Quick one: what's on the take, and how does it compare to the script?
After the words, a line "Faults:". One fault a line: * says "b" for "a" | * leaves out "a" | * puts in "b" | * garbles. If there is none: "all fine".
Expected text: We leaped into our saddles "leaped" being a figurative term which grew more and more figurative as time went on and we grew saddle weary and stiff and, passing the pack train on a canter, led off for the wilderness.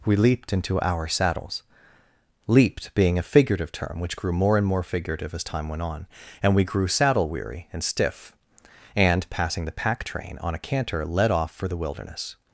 We leaped into our saddles "leaped" being a figurative term which grew more and more figurative as time went on and we grew saddle weary and stiff and, passing the pack train on a canter, led off for the wilderness.
Faults:
all fine